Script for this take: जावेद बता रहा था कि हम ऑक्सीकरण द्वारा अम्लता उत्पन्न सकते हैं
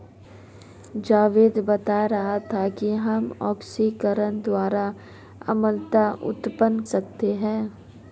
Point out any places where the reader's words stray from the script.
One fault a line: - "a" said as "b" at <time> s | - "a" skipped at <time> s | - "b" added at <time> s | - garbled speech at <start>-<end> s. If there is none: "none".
none